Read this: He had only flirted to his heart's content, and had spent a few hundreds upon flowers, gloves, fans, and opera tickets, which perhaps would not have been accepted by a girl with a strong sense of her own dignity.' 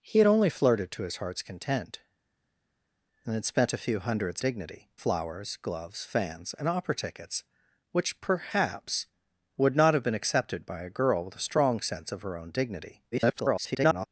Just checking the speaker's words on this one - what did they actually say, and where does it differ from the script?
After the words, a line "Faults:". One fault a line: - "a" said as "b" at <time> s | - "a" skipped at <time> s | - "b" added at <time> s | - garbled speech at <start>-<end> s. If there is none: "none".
He had only flirted to his heart's content, and had spent a few hundreds dignity flowers, gloves, fans, and opera tickets, which perhaps would not have been accepted by a girl with a strong sense of her own dignity.' [garbled]
Faults:
- "upon" said as "dignity" at 4.4 s
- garbled speech at 13.1-14.1 s